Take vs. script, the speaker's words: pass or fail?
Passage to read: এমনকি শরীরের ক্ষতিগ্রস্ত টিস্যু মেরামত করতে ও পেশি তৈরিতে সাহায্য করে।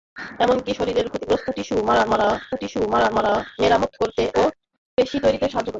fail